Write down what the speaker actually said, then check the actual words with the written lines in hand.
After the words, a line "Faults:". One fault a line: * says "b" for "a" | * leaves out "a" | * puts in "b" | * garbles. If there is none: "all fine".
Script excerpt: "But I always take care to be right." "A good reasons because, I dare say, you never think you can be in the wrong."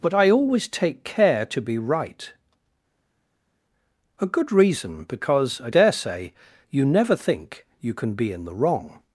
"But I always take care to be right." "A good reason because, I dare say, you never think you can be in the wrong."
Faults:
* says "reason" for "reasons"